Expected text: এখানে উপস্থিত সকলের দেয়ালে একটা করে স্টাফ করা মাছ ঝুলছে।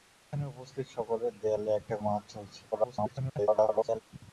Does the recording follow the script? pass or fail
fail